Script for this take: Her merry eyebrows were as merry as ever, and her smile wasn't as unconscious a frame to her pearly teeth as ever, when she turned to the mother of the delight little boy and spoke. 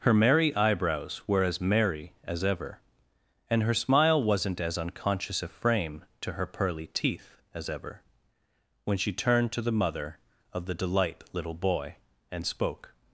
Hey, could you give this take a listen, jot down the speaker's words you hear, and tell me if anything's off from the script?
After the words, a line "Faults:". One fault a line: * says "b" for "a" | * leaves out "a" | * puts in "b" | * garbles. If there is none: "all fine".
Her merry eyebrows were as merry as ever, and her smile wasn't as unconscious a frame to her pearly teeth as ever, when she turned to the mother of the delight little boy and spoke.
Faults:
all fine